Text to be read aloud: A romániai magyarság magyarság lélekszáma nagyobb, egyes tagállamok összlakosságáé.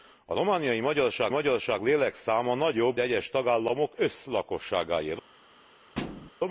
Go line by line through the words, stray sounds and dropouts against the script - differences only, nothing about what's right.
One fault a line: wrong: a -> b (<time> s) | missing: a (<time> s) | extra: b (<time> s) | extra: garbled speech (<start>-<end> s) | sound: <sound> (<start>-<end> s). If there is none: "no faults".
sound: thud (5.9-6.3 s)